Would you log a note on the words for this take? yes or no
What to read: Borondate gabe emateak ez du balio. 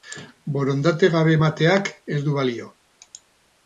no